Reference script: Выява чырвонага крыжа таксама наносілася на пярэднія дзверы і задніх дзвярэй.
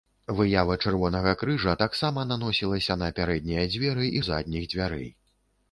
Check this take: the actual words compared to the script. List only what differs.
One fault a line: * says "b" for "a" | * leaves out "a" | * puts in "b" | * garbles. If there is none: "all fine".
all fine